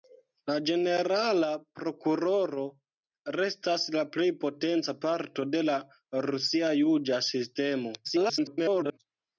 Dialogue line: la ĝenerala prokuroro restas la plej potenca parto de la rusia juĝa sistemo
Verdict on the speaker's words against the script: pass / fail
fail